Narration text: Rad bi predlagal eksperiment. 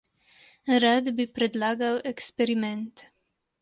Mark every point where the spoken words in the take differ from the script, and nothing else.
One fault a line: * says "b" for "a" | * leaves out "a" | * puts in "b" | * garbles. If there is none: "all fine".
all fine